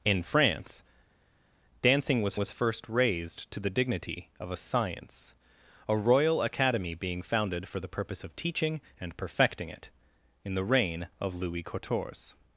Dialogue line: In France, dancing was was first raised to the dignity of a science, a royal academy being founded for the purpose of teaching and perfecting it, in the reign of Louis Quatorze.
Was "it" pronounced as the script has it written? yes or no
yes